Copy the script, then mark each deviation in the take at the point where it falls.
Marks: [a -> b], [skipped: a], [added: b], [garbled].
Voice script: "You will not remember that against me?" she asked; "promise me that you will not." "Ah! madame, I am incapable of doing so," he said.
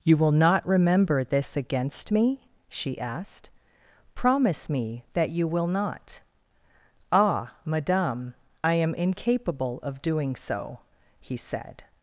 "You will not remember [that -> this] against me?" she asked; "promise me that you will not." "Ah! madame, I am incapable of doing so," he said.